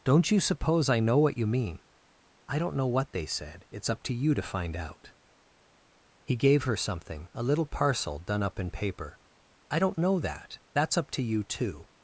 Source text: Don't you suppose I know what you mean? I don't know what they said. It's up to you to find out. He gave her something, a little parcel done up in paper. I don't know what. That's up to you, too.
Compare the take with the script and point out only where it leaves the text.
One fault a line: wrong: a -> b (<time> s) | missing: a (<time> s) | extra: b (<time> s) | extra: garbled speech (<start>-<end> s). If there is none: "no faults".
wrong: what -> that (10.2 s)